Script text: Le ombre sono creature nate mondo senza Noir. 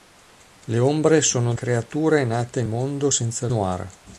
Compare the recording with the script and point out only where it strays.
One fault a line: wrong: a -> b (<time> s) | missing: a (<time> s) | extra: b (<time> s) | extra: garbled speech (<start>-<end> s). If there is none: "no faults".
no faults